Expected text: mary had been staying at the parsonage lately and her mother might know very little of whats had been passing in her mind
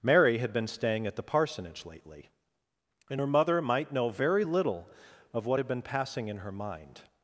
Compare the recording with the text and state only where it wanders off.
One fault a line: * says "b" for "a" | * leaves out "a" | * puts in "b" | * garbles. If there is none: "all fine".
* says "what" for "whats"